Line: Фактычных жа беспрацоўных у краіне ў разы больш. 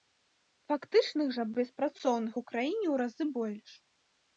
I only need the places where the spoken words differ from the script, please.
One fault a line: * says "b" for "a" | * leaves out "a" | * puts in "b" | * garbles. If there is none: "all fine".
all fine